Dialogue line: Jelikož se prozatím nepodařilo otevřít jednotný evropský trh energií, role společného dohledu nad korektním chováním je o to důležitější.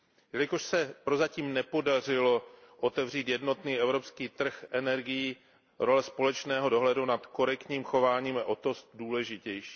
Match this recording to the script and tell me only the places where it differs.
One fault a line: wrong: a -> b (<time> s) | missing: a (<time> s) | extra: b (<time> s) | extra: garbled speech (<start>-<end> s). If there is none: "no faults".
no faults